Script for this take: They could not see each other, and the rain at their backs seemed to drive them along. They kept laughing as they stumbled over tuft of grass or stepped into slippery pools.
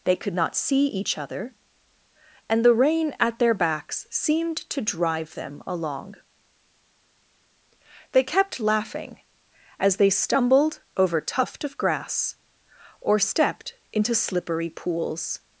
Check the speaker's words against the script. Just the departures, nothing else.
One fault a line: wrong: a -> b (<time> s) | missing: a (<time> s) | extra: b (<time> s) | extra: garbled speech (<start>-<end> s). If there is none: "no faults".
no faults